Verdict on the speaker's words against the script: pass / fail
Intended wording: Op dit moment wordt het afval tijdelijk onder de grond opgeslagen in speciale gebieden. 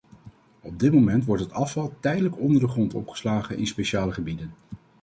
pass